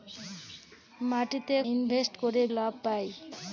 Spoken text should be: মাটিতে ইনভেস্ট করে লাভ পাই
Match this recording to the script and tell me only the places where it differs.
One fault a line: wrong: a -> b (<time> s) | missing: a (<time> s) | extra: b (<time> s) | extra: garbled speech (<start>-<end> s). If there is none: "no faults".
no faults